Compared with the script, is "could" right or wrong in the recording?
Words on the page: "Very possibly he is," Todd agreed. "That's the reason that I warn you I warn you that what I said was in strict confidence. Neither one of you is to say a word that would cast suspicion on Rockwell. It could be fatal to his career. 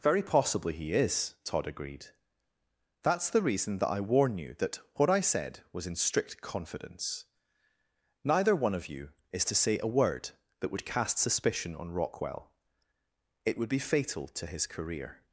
wrong